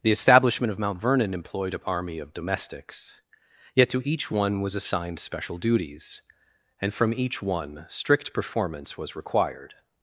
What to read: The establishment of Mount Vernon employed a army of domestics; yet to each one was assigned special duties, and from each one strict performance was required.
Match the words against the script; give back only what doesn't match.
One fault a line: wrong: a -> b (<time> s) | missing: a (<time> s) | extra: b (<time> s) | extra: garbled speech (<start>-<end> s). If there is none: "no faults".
no faults